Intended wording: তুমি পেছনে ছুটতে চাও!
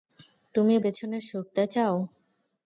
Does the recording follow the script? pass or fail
pass